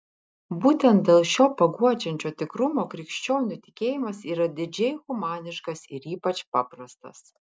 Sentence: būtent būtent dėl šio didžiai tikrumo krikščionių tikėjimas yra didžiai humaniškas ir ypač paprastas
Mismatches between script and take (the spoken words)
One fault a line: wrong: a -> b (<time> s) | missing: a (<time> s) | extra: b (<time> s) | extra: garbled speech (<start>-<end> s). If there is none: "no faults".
missing: būtent (1.0 s)
wrong: didžiai -> paguodžiančio (1.6 s)